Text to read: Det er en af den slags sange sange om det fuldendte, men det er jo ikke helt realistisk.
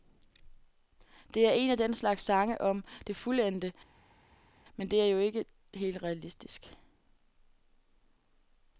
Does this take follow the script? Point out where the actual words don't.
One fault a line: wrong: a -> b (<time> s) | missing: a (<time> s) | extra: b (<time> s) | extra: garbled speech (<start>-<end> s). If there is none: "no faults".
missing: sange (2.6 s)